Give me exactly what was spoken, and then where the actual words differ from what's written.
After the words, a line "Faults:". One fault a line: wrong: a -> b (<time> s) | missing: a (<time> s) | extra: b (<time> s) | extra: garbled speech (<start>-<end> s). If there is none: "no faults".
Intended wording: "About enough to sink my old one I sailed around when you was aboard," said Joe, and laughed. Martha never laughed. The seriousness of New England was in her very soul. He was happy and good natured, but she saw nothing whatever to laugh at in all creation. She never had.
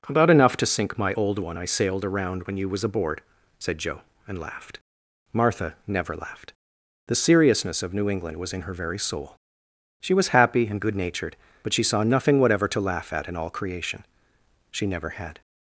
"About enough to sink my old one I sailed around when you was aboard," said Joe, and laughed. Martha never laughed. The seriousness of New England was in her very soul. She was happy and good natured, but she saw nothing whatever to laugh at in all creation. She never had.
Faults:
wrong: He -> She (10.0 s)